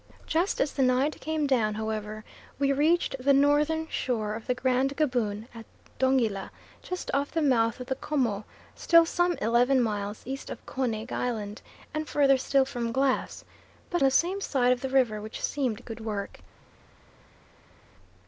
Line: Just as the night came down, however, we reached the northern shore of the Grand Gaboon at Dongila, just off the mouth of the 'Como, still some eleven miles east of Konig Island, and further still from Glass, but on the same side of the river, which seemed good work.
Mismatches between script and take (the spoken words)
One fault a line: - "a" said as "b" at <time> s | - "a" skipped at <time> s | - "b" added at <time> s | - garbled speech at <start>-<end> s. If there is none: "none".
- "on" skipped at 14.0 s